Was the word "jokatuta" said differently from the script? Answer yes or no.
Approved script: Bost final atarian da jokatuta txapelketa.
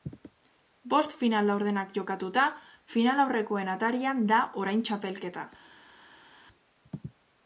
yes